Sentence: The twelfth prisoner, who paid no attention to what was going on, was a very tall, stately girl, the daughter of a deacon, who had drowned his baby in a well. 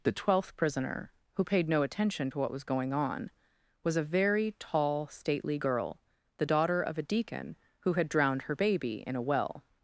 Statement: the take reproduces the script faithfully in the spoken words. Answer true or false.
false